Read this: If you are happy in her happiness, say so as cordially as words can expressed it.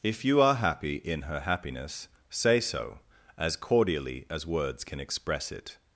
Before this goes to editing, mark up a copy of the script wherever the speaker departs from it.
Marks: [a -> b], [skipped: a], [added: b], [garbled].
If you are happy in her happiness, say so as cordially as words can [expressed -> express] it.